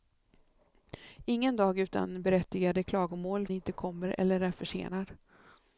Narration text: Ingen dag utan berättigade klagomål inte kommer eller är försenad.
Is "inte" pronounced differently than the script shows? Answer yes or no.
no